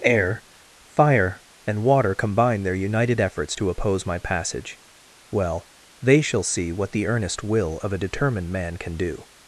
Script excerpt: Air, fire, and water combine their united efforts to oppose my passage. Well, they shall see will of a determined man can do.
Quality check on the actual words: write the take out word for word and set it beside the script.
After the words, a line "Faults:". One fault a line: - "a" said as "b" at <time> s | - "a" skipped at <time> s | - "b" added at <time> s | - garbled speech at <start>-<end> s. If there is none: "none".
Air, fire, and water combine their united efforts to oppose my passage. Well, they shall see what the earnest will of a determined man can do.
Faults:
- "what the earnest" added at 6.7 s